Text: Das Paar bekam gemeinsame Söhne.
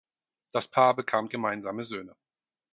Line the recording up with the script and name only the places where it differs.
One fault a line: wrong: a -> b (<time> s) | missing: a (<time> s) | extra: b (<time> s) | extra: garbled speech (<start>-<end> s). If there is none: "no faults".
no faults